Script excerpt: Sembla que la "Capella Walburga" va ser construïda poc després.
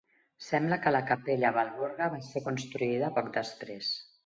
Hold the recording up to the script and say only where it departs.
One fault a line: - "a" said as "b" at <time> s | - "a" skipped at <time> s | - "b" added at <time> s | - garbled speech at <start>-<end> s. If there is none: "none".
none